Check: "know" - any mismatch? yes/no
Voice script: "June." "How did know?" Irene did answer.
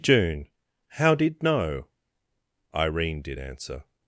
no